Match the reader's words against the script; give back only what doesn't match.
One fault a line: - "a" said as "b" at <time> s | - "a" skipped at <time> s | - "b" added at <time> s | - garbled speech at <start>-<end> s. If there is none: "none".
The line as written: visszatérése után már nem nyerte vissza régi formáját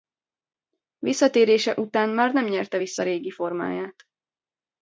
none